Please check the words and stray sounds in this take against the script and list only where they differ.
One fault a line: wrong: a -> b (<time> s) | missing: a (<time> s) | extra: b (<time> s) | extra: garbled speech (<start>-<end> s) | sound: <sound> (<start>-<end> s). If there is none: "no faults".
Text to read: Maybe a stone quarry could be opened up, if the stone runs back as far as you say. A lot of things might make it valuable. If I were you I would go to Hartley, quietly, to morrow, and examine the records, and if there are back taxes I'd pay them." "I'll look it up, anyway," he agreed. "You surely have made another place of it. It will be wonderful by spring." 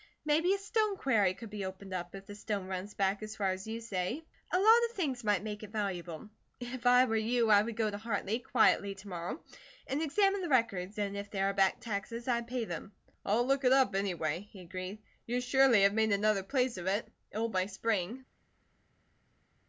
missing: be wonderful (17.5 s)